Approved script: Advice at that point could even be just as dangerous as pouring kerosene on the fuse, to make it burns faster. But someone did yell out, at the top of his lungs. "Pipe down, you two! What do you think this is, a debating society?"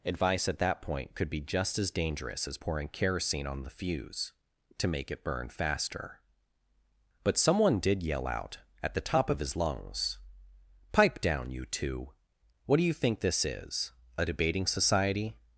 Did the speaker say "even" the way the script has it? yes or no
no